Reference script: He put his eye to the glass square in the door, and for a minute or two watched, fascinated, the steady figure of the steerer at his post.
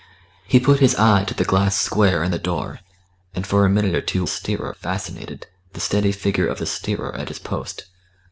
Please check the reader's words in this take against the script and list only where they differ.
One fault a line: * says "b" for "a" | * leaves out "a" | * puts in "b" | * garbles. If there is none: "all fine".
* says "steerer" for "watched"